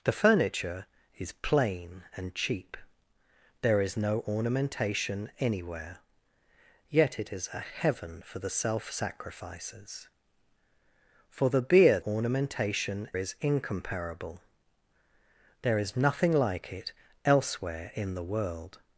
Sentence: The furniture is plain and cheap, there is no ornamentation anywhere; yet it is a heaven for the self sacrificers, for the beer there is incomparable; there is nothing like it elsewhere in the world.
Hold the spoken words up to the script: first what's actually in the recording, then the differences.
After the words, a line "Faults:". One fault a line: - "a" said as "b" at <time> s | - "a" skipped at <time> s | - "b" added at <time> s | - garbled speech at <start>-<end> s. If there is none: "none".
The furniture is plain and cheap, there is no ornamentation anywhere; yet it is a heaven for the self sacrificers, for the beer ornamentation is incomparable; there is nothing like it elsewhere in the world.
Faults:
- "there" said as "ornamentation" at 12.0 s